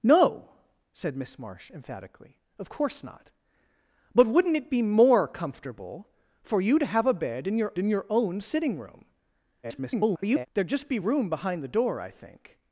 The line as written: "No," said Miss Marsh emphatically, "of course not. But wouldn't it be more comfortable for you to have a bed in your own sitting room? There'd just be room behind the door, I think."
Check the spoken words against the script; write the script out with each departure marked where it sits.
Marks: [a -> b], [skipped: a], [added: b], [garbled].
"No," said Miss Marsh emphatically, "of course not. But wouldn't it be more comfortable for you to have a bed in your [added: in your] own sitting room? [garbled] There'd just be room behind the door, I think."